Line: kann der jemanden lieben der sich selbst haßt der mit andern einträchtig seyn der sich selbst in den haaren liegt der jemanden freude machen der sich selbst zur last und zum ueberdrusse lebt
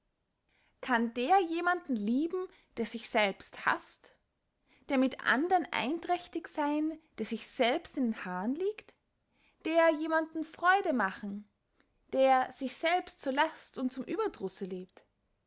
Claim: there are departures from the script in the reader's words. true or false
false